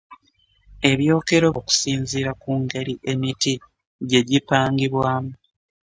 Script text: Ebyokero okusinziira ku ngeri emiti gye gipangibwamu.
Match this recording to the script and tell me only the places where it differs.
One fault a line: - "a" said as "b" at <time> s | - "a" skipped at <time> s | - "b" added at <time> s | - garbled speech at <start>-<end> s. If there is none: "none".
none